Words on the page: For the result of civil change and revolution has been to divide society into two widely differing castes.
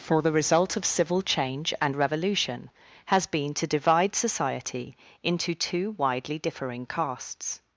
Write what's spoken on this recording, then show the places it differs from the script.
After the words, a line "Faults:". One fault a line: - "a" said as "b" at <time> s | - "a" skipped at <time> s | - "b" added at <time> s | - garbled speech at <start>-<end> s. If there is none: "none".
For the result of civil change and revolution has been to divide society into two widely differing castes.
Faults:
none